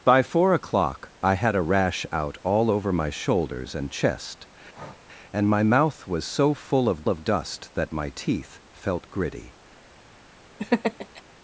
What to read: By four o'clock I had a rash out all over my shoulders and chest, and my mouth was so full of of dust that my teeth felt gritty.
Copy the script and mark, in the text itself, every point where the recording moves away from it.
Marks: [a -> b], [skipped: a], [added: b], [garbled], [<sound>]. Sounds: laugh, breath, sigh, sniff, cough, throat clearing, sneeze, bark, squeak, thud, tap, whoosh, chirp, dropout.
By four o'clock I had a rash out all over my shoulders and chest, [breath] and my mouth was so full of of dust that my teeth felt gritty. [laugh]